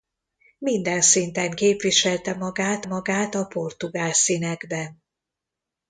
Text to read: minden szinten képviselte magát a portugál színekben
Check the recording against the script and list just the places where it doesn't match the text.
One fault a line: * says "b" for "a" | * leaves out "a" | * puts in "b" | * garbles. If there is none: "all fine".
* puts in "magát"